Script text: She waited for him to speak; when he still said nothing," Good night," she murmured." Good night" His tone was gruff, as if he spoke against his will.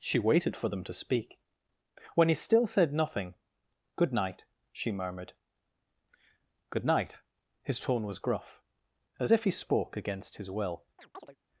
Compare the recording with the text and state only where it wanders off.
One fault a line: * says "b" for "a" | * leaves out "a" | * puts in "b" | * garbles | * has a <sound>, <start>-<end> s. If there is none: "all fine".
* says "them" for "him"
* has a chirp, 11.0-11.4 s